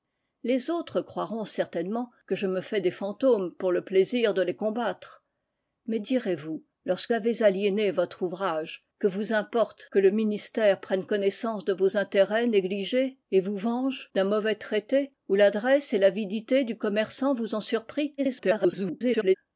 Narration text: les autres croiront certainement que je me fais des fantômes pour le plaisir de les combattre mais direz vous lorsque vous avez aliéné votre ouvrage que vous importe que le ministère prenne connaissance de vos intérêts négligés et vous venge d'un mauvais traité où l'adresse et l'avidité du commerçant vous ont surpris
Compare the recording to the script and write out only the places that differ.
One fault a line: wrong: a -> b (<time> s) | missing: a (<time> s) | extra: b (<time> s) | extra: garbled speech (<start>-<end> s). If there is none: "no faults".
missing: vous (7.1 s)
extra: garbled speech (18.2-19.3 s)